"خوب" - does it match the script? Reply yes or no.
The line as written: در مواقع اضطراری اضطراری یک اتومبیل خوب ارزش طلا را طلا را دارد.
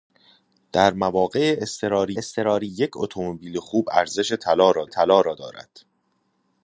yes